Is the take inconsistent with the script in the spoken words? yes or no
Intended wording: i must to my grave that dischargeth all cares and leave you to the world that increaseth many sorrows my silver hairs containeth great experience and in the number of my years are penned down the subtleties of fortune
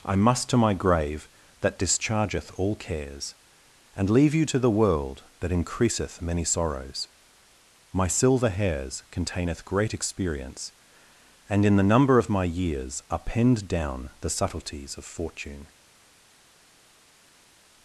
no